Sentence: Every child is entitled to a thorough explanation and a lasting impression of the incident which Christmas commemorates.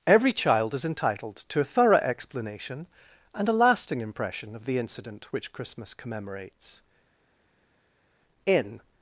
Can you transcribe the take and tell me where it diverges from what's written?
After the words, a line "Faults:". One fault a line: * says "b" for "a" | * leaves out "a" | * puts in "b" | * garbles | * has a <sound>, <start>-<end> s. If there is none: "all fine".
Every child is entitled to a thorough explanation and a lasting impression of the incident which Christmas commemorates. In
Faults:
* puts in "In"